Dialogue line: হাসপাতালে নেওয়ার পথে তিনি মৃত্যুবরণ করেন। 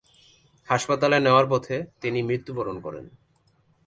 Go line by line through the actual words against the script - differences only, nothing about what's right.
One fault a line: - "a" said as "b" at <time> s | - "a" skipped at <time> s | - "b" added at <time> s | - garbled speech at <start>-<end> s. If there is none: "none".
none